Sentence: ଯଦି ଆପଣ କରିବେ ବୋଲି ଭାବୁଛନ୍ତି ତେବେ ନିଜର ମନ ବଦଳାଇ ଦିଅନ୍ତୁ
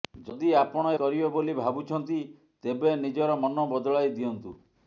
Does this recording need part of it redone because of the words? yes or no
no